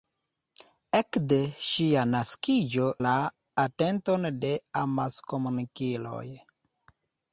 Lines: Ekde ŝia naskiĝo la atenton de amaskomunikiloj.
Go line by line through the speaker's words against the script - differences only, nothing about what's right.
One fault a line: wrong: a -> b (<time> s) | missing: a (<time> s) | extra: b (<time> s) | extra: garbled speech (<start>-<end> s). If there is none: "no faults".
no faults